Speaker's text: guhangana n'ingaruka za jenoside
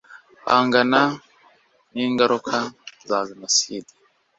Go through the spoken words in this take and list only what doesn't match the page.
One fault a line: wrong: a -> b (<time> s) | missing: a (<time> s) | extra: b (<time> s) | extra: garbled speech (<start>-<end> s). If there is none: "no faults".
no faults